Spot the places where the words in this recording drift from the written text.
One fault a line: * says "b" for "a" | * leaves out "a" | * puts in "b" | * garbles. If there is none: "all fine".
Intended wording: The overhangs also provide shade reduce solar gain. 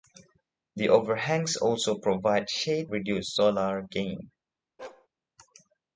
all fine